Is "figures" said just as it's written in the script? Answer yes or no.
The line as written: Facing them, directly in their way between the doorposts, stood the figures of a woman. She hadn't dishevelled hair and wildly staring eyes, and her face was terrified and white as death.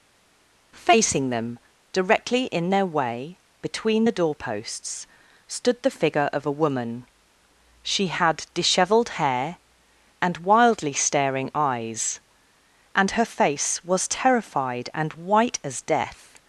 no